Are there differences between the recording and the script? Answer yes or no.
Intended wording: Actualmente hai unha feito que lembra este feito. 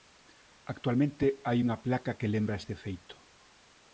yes